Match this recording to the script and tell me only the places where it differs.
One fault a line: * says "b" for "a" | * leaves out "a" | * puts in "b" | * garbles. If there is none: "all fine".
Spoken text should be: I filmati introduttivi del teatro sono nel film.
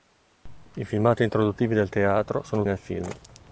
all fine